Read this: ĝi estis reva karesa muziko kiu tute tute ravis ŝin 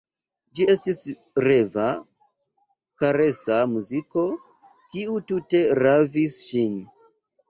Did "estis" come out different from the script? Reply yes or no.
no